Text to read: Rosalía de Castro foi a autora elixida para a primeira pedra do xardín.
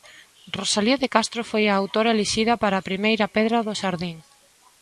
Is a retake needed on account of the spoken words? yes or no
no